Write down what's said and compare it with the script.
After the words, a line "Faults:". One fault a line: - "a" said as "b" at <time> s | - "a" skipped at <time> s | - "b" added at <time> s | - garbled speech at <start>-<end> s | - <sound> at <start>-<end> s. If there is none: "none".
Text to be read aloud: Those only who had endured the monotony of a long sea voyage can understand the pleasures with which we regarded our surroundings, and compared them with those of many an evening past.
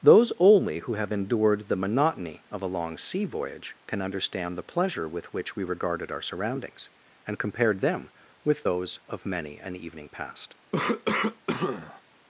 Those only who have endured the monotony of a long sea voyage can understand the pleasure with which we regarded our surroundings, and compared them with those of many an evening past.
Faults:
- "had" said as "have" at 0.9 s
- "pleasures" said as "pleasure" at 4.6 s
- cough at 10.7-12.0 s